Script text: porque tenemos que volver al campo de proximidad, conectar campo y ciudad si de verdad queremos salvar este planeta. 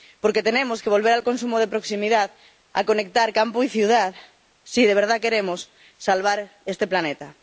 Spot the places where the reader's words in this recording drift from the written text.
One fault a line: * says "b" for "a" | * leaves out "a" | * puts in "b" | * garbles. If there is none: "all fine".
* says "consumo" for "campo"
* puts in "a"